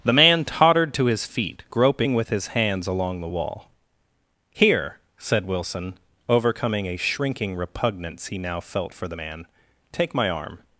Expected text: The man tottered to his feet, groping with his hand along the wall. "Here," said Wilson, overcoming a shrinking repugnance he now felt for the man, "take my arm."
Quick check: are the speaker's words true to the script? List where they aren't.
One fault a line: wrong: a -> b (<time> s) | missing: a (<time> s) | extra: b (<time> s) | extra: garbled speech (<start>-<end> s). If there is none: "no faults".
wrong: hand -> hands (2.5 s)